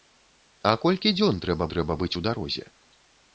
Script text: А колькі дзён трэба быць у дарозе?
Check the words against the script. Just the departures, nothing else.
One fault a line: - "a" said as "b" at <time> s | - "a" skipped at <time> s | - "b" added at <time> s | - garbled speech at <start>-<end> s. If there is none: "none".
- "трэба" added at 1.7 s